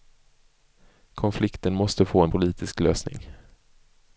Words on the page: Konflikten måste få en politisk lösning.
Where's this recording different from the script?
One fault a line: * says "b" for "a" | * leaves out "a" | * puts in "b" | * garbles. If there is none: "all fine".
all fine